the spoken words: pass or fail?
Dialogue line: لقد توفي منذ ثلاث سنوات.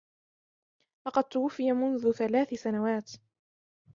pass